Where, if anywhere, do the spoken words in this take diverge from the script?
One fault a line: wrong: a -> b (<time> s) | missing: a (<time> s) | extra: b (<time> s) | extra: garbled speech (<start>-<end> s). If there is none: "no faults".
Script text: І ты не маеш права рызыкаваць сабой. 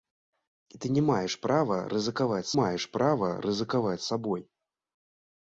extra: маеш права рызыкаваць (2.6 s)